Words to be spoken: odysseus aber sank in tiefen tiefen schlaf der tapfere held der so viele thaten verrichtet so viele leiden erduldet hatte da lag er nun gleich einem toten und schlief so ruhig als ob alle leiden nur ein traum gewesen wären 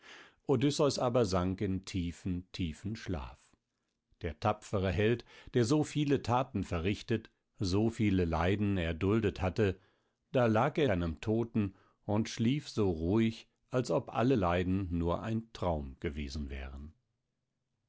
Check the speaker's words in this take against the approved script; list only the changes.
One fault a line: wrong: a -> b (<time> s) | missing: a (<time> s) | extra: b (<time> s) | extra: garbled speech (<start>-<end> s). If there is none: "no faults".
missing: nun gleich (10.9 s)